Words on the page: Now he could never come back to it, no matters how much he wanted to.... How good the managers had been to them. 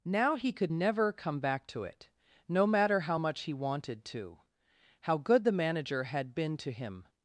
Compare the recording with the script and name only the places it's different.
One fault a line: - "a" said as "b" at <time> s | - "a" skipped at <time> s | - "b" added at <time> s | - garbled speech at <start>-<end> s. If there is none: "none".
- "matters" said as "matter" at 2.7 s
- "managers" said as "manager" at 5.5 s
- "them" said as "him" at 6.7 s